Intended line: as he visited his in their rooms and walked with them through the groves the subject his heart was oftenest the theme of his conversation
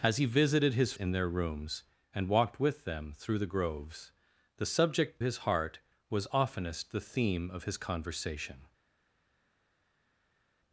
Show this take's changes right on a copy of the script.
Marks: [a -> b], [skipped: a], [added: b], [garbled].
as he visited his in their rooms and walked with them through the groves the subject his heart was oftenest the theme of his conversation